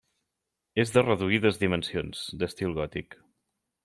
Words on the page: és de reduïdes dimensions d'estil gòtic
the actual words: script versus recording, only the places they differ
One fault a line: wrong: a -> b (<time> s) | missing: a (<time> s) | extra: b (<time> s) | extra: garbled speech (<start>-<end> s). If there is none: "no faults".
no faults